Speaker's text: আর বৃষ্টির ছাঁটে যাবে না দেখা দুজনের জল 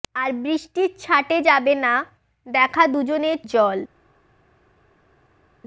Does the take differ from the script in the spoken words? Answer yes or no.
no